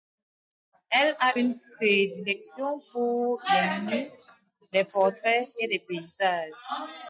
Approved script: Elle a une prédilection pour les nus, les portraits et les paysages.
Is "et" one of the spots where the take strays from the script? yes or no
no